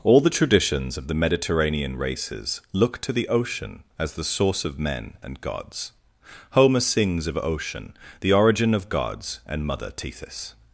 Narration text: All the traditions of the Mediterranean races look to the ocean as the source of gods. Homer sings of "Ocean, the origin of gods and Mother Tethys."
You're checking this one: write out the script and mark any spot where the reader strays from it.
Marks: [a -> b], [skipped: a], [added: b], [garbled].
All the traditions of the Mediterranean races look to the ocean as the source of [added: men and] gods. Homer sings of "Ocean, the origin of gods and Mother Tethys."